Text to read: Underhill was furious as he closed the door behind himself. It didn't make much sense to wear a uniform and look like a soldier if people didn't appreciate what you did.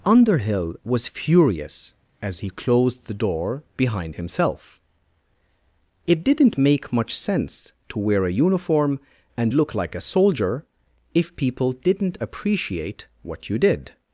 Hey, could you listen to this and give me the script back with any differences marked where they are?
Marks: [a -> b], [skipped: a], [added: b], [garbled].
Underhill was furious as he closed the door behind himself. It didn't make much sense to wear a uniform and look like a soldier if people didn't appreciate what you did.